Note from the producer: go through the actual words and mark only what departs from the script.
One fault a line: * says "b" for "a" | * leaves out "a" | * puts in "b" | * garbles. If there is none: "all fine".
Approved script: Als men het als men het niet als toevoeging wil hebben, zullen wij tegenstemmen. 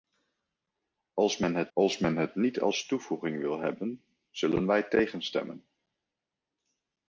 all fine